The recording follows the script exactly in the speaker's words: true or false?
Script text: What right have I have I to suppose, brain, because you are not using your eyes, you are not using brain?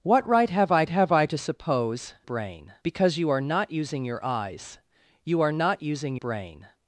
true